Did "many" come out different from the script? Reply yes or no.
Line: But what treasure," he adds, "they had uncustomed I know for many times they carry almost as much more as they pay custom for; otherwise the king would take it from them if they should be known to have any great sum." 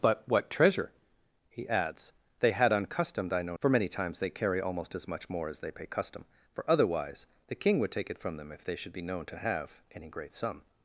no